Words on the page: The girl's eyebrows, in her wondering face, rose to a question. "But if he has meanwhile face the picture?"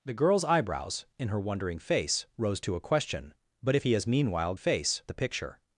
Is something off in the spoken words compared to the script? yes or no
no